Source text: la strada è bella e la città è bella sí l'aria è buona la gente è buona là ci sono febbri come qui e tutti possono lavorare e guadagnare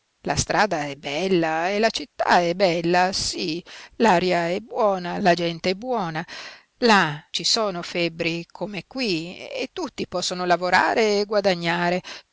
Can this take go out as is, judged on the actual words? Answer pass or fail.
pass